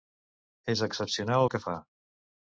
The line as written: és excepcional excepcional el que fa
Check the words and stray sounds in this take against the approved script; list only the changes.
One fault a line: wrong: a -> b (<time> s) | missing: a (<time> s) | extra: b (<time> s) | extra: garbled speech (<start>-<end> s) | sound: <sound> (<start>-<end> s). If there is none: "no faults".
missing: excepcional (1.4 s)